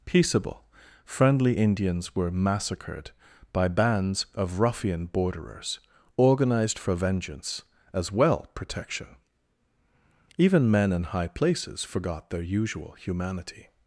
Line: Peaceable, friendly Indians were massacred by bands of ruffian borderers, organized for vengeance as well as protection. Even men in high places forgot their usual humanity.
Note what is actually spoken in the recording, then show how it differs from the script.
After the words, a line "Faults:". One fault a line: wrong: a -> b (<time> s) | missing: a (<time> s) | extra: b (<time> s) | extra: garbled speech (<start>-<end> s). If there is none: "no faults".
Peaceable, friendly Indians were massacred by bands of ruffian borderers, organized for vengeance as well protection. Even men in high places forgot their usual humanity.
Faults:
missing: as (8.5 s)